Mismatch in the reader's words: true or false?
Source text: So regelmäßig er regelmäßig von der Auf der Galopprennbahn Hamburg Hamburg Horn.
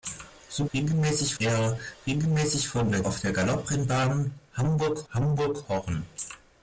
false